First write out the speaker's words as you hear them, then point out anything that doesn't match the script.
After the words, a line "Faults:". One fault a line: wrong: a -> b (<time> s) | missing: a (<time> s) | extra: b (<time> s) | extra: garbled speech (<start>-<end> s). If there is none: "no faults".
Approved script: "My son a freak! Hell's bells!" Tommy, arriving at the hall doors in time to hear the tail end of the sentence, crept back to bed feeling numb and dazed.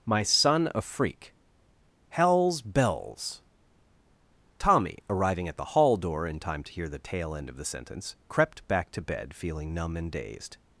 "My son a freak! Hell's bells!" Tommy, arriving at the hall door in time to hear the tail end of the sentence, crept back to bed feeling numb and dazed.
Faults:
wrong: doors -> door (6.0 s)